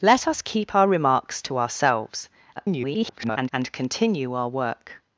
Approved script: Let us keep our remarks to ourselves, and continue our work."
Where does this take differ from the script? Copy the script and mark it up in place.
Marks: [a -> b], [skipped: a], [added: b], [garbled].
Let us keep our remarks to ourselves, [garbled] and continue our work."